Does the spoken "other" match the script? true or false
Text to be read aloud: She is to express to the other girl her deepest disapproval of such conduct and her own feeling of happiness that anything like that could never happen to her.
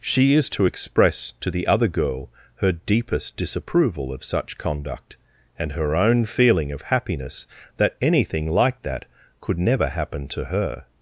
true